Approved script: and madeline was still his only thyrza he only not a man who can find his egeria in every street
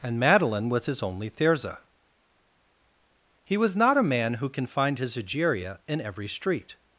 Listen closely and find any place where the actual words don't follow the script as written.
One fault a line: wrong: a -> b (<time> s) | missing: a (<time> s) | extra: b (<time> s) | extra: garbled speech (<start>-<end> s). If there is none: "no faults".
missing: still (0.9 s)
wrong: only -> was (3.6 s)